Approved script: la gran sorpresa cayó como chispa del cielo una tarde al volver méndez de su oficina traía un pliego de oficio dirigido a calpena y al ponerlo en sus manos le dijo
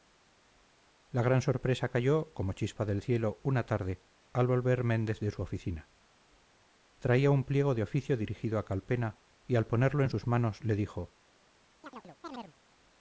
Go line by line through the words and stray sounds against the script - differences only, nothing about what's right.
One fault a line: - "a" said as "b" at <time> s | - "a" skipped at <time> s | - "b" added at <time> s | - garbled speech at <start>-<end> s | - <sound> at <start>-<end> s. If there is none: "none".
- chirp at 11.8-12.5 s